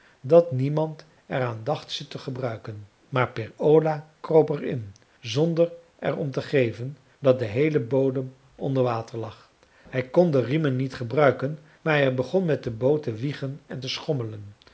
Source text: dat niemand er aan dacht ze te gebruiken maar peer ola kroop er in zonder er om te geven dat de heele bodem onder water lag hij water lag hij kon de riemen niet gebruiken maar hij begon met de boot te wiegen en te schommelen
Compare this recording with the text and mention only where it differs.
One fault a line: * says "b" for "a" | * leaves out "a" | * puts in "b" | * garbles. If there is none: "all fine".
* leaves out "water lag hij"